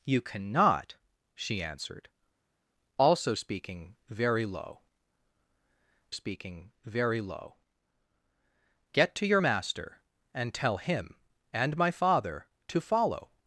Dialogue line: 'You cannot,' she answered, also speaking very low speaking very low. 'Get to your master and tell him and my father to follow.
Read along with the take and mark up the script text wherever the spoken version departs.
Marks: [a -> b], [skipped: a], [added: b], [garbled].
'You cannot,' she answered, also speaking very low speaking very low. 'Get to your master and tell him and my father to follow.